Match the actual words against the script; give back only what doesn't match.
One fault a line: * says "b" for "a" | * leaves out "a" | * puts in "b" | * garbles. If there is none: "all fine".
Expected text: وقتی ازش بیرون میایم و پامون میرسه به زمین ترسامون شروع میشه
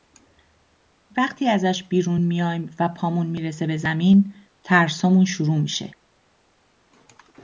all fine